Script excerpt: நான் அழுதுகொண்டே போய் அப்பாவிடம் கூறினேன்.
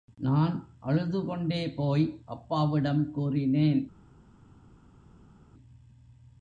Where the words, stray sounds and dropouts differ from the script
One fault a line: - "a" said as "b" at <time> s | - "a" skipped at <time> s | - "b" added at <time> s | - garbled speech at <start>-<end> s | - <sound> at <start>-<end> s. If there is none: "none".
none